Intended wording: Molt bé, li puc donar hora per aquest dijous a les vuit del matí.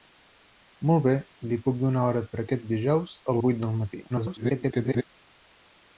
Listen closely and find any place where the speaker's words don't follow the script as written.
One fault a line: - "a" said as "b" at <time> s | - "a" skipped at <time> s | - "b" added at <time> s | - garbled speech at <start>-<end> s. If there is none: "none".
- "les" skipped at 3.4 s
- garbled speech at 4.1-5.0 s